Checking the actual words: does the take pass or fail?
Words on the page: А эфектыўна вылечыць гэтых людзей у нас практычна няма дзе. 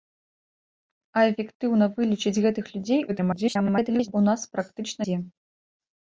fail